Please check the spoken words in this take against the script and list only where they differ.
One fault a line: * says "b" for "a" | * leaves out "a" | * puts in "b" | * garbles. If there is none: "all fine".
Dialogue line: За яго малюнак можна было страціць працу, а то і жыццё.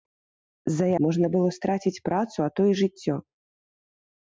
* leaves out "яго малюнак"